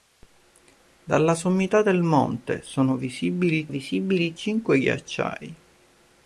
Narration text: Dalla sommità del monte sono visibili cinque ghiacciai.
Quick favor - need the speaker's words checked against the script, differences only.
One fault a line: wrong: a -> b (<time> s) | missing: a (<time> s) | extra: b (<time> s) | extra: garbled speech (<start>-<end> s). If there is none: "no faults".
extra: visibili (3.7 s)